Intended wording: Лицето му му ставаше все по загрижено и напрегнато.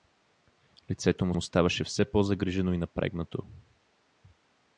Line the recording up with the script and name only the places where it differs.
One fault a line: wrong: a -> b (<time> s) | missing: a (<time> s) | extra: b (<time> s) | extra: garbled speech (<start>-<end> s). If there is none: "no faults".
no faults